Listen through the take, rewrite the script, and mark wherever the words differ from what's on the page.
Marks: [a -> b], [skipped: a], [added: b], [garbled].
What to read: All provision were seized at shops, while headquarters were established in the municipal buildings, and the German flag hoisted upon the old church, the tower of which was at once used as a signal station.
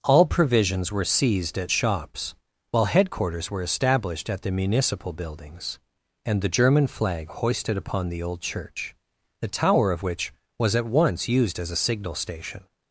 All [provision -> provisions] were seized at shops, while headquarters were established [in -> at] the municipal buildings, and the German flag hoisted upon the old church, the tower of which was at once used as a signal station.